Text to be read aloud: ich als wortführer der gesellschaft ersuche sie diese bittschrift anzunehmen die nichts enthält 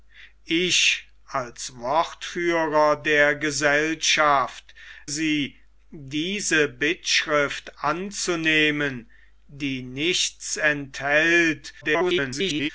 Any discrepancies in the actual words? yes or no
yes